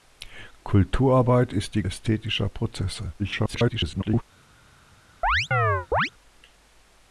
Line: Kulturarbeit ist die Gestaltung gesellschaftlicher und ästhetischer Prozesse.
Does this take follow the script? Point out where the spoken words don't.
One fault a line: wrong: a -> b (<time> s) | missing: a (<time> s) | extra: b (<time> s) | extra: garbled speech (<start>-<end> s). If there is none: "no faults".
missing: Gestaltung gesellschaftlicher und (1.8 s)
extra: garbled speech (3.2-4.2 s)